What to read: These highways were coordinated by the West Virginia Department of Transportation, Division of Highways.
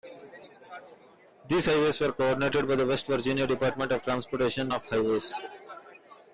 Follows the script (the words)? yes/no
no